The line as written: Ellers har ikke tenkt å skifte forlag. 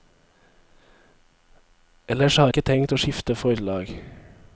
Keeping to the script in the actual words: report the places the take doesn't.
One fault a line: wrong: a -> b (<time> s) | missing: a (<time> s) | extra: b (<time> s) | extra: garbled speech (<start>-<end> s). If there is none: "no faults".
no faults